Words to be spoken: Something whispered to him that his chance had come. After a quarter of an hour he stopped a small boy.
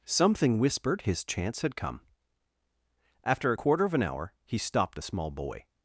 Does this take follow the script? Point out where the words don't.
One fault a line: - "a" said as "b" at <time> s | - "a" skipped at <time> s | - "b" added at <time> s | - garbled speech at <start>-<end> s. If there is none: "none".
- "to him that" skipped at 1.0 s